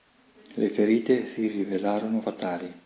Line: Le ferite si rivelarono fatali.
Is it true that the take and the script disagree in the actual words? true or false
false